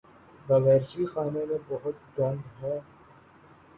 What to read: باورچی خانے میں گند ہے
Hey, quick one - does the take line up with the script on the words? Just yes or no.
no